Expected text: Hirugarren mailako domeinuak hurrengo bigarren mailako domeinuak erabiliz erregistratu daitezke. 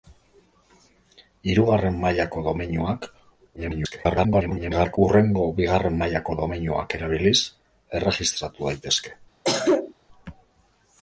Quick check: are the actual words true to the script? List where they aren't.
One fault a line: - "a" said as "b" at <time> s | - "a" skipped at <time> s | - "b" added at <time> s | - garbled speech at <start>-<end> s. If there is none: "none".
- garbled speech at 3.6-5.0 s